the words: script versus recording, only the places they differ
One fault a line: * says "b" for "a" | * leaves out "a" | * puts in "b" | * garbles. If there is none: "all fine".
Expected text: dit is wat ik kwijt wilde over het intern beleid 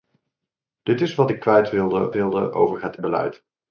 * puts in "wilde"
* leaves out "intern"